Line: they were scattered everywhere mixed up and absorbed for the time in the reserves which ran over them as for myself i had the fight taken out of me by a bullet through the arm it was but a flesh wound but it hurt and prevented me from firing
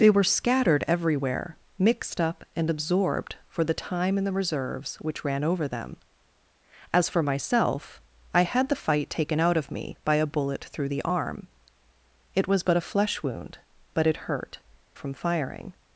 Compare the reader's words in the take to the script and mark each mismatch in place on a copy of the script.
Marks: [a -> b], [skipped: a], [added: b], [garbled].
they were scattered everywhere mixed up and absorbed for the time in the reserves which ran over them as for myself i had the fight taken out of me by a bullet through the arm it was but a flesh wound but it hurt [skipped: and prevented me] from firing